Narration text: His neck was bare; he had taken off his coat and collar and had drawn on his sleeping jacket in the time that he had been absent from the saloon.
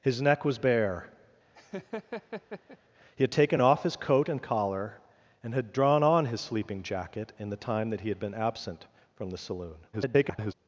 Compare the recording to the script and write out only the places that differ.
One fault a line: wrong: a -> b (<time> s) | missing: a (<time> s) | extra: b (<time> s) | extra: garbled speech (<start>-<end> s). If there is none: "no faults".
extra: garbled speech (9.9-10.5 s)